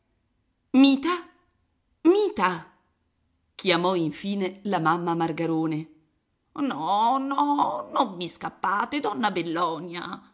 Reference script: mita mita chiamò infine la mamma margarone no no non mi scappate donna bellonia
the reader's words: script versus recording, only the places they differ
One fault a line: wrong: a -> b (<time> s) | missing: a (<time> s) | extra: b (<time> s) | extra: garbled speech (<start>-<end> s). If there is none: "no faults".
no faults